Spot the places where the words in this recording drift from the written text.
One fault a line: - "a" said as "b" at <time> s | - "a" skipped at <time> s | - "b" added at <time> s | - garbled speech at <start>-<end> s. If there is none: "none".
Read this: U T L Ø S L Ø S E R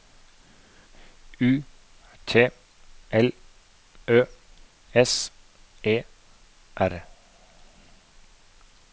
- "L Ø S" skipped at 5.3 s